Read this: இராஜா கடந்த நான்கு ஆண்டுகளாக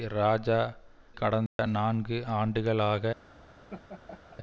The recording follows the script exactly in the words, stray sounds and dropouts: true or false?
false